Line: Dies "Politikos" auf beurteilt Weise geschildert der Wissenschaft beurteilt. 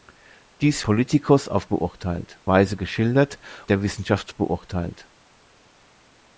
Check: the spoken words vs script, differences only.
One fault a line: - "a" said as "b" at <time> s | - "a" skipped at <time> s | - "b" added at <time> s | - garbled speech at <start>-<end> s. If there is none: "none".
none